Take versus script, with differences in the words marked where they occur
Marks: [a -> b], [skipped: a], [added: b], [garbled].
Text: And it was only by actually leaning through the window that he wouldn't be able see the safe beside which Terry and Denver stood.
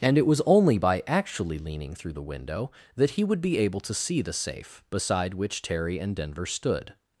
And it was only by actually leaning through the window that he [wouldn't -> would] be able [added: to] see the safe beside which Terry and Denver stood.